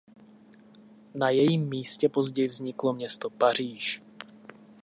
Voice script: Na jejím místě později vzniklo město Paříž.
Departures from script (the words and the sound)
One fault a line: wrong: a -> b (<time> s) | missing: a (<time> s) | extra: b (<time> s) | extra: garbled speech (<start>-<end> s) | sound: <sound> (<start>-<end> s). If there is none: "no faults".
no faults